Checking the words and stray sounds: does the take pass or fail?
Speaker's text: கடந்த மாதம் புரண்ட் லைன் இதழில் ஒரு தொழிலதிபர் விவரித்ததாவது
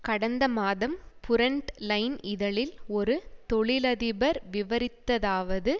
pass